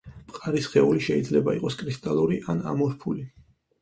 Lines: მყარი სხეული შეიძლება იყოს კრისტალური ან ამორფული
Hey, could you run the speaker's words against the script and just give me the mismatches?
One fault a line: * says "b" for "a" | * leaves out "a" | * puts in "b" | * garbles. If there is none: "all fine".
all fine